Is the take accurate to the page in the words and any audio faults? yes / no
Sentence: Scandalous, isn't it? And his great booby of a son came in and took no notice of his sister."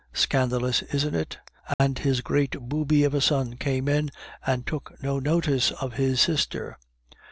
no